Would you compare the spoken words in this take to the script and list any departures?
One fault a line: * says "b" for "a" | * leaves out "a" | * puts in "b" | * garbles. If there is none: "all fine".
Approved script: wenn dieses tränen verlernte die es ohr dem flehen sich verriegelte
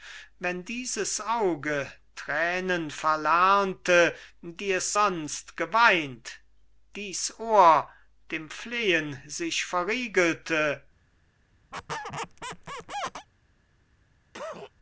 * puts in "auge"
* puts in "sonst geweint dies"